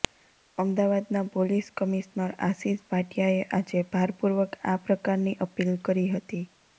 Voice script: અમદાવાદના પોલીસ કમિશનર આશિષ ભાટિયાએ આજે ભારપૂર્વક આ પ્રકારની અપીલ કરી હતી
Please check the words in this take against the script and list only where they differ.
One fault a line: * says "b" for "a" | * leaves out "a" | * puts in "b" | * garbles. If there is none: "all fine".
all fine